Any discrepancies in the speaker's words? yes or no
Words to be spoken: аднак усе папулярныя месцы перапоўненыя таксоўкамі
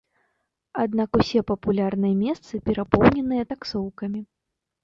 no